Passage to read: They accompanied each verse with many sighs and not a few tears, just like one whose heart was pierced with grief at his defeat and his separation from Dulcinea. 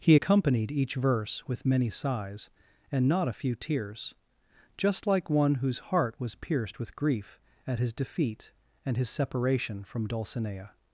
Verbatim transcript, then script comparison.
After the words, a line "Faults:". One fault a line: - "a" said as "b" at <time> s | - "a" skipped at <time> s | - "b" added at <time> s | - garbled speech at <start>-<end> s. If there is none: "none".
He accompanied each verse with many sighs and not a few tears, just like one whose heart was pierced with grief at his defeat and his separation from Dulcinea.
Faults:
- "They" said as "He" at 0.0 s